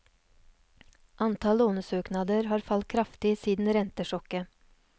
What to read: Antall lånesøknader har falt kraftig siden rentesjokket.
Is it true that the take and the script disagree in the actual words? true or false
false